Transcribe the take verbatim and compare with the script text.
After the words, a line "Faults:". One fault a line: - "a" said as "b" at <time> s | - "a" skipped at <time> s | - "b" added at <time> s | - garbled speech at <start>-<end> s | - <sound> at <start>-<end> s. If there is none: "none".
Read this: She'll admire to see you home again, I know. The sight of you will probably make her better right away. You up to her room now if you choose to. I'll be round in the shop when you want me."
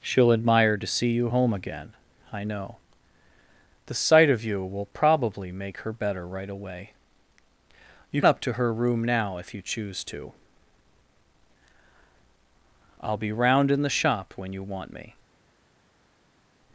She'll admire to see you home again, I know. The sight of you will probably make her better right away. You up to her room now if you choose to. I'll be round in the shop when you want me."
Faults:
none